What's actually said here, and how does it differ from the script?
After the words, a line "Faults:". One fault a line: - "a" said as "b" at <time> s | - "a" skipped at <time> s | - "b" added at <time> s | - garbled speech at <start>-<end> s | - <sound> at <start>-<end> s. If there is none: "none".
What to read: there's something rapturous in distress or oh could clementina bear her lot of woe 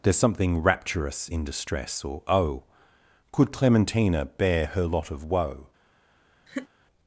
there's something rapturous in distress or oh could clementina bear her lot of woe
Faults:
- laugh at 6.5-6.7 s